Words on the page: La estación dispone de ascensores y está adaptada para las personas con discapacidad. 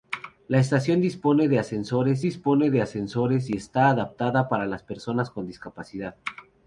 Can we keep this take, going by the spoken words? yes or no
no